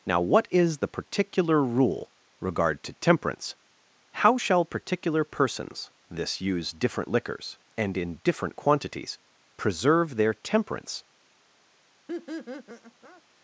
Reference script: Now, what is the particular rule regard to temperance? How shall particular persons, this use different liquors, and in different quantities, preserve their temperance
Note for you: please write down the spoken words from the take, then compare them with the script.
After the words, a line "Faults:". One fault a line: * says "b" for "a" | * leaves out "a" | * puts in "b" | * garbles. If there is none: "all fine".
Now, what is the particular rule regard to temperance? How shall particular persons, this use different liquors, and in different quantities, preserve their temperance
Faults:
all fine